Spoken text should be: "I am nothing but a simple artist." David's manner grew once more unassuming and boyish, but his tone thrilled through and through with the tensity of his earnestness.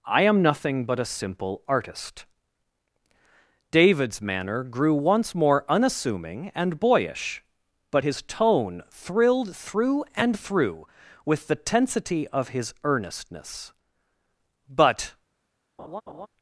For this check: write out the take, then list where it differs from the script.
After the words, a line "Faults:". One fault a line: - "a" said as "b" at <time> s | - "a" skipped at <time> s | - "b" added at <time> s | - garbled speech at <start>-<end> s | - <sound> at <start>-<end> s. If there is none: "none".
"I am nothing but a simple artist." David's manner grew once more unassuming and boyish, but his tone thrilled through and through with the tensity of his earnestness. "But
Faults:
- "But" added at 14.7 s
- laugh at 15.8-16.3 s